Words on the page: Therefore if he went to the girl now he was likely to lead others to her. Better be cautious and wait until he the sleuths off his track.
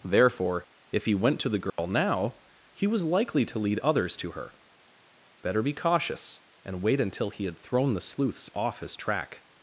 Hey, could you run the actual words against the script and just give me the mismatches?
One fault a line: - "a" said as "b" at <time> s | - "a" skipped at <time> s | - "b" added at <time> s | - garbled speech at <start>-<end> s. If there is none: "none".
- "had thrown" added at 7.4 s